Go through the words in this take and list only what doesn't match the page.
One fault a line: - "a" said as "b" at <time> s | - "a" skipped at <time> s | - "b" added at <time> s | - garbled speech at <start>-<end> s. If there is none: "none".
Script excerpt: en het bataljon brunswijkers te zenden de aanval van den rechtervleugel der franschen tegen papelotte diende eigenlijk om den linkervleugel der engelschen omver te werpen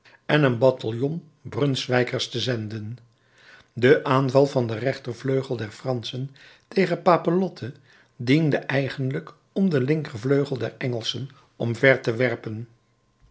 - "het" said as "een" at 0.4 s